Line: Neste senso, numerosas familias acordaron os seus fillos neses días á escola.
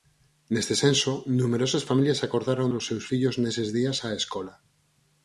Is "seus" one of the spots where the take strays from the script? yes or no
no